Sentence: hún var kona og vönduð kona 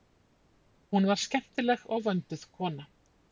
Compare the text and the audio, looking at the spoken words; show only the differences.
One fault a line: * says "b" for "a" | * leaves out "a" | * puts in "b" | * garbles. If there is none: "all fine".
* says "skemmtileg" for "kona"